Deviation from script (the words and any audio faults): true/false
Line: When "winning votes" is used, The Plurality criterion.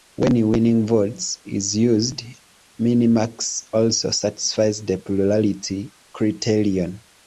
true